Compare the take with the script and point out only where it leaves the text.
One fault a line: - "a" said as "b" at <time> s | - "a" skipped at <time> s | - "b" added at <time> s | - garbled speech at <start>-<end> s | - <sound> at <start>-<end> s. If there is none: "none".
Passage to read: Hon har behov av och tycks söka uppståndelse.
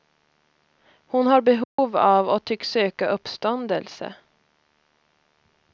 - dropout at 1.6-1.8 s